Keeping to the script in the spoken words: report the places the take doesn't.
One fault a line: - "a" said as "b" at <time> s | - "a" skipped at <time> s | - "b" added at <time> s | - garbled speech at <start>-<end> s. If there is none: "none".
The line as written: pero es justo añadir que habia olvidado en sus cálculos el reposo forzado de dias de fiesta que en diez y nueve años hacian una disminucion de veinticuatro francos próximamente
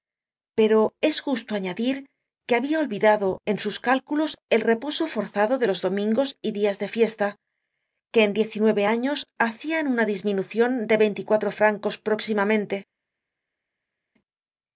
- "los domingos y" added at 5.6 s